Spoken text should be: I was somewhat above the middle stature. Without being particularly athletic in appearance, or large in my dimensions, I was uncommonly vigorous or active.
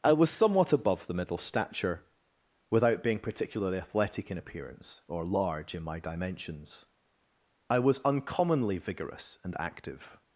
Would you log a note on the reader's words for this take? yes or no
yes